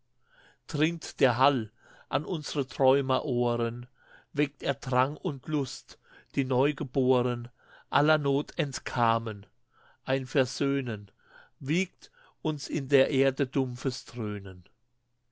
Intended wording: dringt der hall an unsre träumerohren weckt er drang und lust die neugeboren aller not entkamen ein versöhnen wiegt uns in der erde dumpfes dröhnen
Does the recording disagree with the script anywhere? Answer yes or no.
no